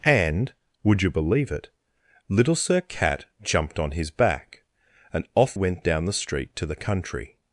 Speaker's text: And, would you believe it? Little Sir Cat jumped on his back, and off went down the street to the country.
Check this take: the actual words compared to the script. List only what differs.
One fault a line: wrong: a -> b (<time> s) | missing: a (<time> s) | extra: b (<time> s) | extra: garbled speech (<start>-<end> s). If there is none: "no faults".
no faults